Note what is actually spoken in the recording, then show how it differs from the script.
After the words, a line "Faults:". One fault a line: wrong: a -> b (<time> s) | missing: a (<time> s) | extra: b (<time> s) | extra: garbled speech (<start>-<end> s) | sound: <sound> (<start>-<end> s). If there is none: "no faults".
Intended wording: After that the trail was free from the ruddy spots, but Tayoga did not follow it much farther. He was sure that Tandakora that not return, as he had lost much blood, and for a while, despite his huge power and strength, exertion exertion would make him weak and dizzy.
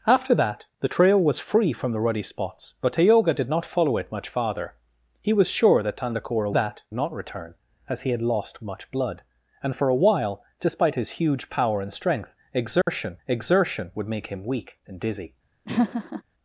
After that the trail was free from the ruddy spots, but Tayoga did not follow it much farther. He was sure that Tandakora that not return, as he had lost much blood, and for a while, despite his huge power and strength, exertion exertion would make him weak and dizzy.
Faults:
sound: dropout (12.8-12.9 s)
sound: laugh (15.7-16.2 s)